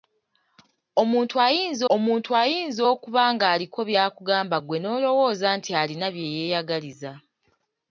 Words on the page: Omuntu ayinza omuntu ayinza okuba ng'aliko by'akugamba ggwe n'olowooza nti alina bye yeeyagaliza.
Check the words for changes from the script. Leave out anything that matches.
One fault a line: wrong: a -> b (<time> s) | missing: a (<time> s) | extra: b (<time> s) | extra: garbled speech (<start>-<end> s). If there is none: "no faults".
no faults